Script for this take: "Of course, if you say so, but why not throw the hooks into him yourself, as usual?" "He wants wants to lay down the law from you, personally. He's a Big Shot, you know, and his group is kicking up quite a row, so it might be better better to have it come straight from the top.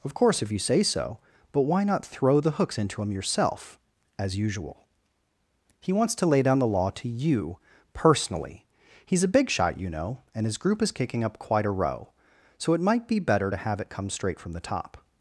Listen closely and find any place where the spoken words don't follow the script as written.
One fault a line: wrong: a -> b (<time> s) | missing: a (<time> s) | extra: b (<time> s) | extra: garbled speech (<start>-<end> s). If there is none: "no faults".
missing: wants (6.2 s)
wrong: from -> to (6.9 s)
missing: better (13.5 s)